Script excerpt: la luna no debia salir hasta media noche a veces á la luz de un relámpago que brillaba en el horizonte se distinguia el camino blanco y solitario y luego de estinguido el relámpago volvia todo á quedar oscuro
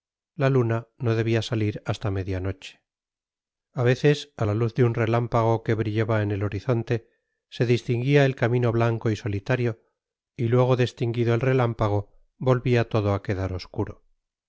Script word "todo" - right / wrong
right